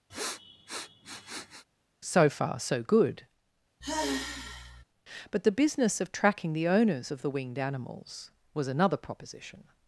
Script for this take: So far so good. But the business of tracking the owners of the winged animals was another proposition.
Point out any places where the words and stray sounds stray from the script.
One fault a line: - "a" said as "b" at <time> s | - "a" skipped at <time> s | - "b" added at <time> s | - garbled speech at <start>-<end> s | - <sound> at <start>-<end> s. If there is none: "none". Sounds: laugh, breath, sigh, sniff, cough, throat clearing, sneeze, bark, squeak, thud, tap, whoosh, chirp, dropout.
- sniff at 0.1-1.6 s
- sigh at 3.8-4.8 s